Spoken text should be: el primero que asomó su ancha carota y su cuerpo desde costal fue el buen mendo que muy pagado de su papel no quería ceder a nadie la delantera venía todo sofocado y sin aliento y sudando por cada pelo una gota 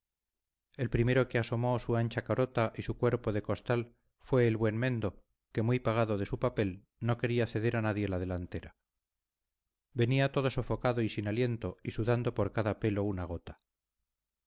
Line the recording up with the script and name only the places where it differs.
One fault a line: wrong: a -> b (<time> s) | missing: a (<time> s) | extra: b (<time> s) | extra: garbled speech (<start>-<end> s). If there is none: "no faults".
wrong: desde -> de (3.3 s)